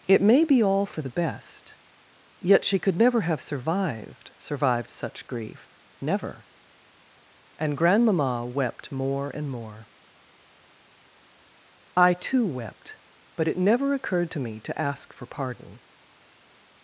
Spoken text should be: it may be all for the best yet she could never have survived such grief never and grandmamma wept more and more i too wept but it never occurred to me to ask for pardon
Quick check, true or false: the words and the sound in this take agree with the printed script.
false